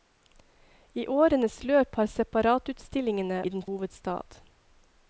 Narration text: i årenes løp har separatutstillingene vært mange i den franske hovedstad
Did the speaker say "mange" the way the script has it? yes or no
no